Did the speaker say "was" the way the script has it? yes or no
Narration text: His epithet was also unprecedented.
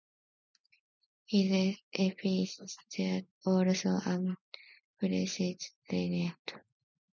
no